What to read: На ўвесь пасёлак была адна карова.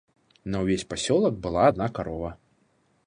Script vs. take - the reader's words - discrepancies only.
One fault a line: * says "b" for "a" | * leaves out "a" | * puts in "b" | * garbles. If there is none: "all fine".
all fine